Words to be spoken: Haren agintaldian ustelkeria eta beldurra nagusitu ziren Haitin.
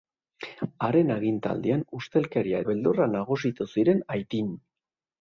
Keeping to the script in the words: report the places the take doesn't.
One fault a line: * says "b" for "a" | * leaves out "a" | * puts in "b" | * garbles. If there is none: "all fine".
* leaves out "eta"